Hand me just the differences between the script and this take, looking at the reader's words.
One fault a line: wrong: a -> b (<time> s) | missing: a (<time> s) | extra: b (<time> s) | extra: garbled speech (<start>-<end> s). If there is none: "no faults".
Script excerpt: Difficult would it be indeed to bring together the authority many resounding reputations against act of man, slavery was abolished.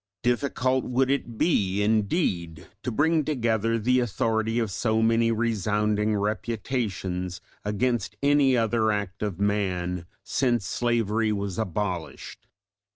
extra: of so (4.6 s)
extra: any other (8.2 s)
extra: since (10.2 s)